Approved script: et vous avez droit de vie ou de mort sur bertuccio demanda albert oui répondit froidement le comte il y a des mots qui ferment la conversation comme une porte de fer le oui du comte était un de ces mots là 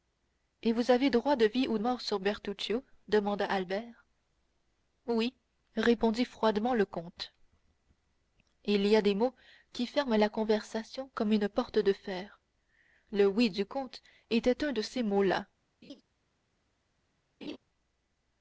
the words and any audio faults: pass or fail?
fail